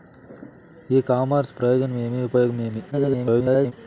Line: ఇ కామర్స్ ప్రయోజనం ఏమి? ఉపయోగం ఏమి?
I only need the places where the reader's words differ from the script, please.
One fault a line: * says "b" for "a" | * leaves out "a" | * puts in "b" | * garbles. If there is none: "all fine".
* garbles